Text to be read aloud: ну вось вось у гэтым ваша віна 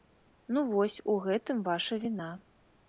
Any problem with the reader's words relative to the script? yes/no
yes